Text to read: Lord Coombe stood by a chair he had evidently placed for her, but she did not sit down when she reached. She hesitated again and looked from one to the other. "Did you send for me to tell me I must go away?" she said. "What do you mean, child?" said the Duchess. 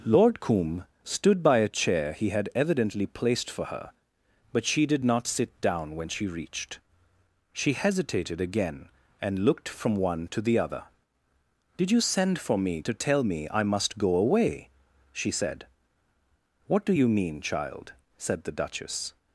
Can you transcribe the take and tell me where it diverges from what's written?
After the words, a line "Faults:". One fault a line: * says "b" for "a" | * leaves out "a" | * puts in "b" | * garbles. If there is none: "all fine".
Lord Coombe stood by a chair he had evidently placed for her, but she did not sit down when she reached. She hesitated again and looked from one to the other. "Did you send for me to tell me I must go away?" she said. "What do you mean, child?" said the Duchess.
Faults:
all fine